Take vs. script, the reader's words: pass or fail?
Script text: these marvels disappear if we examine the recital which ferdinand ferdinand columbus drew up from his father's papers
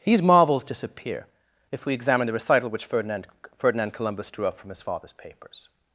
pass